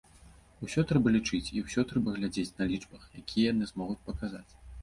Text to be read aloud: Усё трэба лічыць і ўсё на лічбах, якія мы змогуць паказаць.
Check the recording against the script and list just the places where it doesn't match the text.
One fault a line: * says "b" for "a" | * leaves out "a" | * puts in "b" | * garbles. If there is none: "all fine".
* puts in "трэба глядзець"
* says "яны" for "мы"